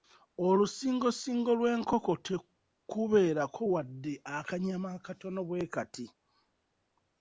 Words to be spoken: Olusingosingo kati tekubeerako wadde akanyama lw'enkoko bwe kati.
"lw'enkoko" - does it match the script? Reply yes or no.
no